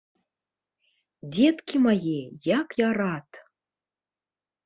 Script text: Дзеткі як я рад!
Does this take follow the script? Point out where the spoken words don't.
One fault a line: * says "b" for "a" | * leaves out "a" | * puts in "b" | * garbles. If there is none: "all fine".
* puts in "мае"